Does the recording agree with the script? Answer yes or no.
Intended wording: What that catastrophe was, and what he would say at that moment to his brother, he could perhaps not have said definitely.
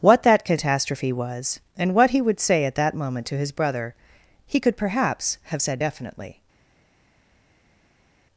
no